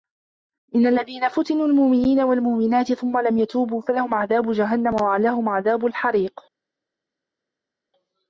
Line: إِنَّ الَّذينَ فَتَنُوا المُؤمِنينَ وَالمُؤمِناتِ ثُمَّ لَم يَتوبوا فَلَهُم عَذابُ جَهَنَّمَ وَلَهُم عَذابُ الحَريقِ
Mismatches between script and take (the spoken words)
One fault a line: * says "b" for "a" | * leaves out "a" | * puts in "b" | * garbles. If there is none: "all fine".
all fine